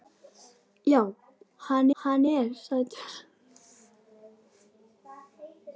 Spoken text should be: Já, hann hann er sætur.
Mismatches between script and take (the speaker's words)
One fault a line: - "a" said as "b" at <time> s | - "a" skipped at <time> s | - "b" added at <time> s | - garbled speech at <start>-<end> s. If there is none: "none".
none